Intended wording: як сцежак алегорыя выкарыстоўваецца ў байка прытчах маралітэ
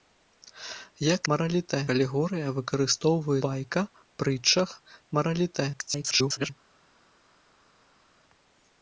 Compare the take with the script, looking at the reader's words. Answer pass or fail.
fail